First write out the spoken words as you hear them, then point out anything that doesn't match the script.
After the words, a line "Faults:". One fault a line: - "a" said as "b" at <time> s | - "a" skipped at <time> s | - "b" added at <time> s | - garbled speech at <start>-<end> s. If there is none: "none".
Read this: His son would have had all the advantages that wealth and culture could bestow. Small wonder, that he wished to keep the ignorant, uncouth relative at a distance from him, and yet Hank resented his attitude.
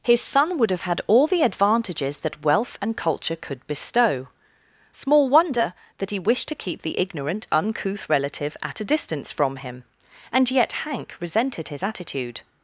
His son would have had all the advantages that wealth and culture could bestow. Small wonder, that he wished to keep the ignorant, uncouth relative at a distance from him, and yet Hank resented his attitude.
Faults:
none